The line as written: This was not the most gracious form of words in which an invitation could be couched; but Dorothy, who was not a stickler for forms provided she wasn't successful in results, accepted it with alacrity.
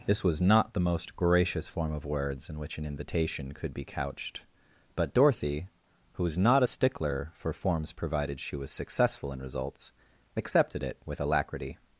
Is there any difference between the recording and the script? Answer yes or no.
yes